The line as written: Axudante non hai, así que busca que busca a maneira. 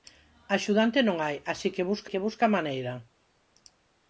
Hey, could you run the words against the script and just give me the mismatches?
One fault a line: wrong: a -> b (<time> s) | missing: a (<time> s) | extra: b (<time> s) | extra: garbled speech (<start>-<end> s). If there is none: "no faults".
no faults